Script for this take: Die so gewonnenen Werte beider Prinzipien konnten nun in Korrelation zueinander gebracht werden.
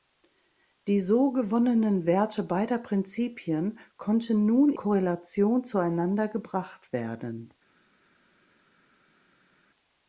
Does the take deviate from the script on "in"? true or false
true